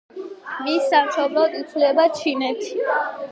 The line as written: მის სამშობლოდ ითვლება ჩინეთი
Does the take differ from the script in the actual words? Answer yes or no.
no